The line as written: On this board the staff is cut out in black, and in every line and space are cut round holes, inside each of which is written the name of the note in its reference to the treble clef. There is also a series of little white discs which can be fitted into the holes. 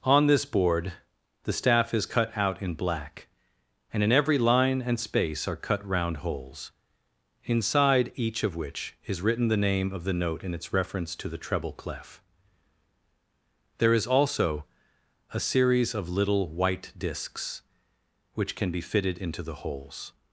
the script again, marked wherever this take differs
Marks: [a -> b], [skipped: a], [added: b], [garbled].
On this board the staff is cut out in black, and in every line and space are cut round holes, inside each of which is written the name of the note in its reference to the treble clef. There is also a series of little white discs which can be fitted into the holes.